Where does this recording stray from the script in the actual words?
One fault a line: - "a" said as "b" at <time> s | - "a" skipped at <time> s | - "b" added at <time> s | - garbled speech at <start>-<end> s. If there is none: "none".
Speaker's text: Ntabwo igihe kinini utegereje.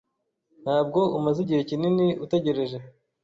- "umaze" added at 1.2 s